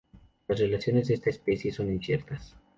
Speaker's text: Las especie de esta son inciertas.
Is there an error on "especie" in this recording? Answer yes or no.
yes